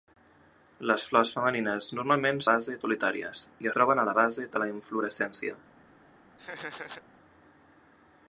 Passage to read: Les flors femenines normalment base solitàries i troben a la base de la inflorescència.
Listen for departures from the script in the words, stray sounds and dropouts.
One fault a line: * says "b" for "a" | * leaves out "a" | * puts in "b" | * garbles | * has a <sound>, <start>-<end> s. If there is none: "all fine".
* has a laugh, 6.4-7.0 s